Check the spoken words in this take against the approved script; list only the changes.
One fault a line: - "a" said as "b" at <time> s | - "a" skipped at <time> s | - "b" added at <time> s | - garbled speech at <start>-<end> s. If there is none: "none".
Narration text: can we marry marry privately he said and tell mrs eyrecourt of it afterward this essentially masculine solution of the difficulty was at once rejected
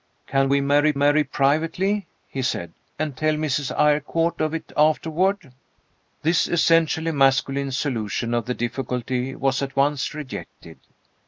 none